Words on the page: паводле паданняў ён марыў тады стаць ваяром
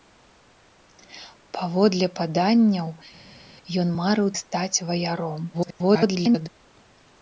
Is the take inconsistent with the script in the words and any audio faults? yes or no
yes